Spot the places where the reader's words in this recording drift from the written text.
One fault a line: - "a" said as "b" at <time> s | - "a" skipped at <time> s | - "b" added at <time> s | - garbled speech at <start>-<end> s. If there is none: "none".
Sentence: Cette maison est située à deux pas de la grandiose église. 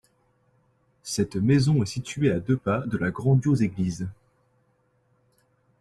none